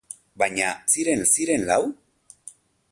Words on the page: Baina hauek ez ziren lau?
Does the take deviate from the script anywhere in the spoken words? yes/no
yes